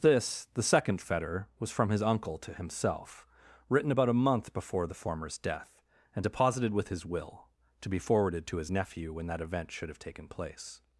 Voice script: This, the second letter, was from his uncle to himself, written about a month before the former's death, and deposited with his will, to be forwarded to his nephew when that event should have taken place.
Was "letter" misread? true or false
true